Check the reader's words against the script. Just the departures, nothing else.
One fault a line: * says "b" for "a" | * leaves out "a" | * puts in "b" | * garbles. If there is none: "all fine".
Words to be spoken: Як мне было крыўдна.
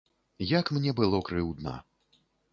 all fine